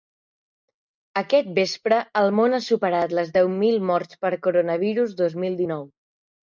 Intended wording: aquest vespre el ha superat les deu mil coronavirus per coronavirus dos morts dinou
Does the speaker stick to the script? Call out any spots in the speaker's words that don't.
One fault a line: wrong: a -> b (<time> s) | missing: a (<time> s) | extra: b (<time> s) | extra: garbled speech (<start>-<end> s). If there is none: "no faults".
extra: món (2.4 s)
wrong: coronavirus -> morts (3.9 s)
wrong: morts -> mil (5.5 s)